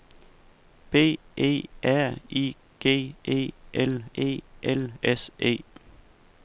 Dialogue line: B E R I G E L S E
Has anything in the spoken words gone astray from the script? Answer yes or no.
yes